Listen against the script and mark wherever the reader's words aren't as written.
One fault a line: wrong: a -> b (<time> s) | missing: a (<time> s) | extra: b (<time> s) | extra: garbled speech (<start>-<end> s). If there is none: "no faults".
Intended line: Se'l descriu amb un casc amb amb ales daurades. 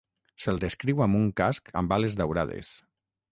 missing: amb (2.0 s)